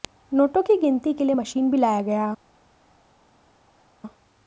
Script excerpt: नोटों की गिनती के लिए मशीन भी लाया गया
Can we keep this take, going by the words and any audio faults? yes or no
yes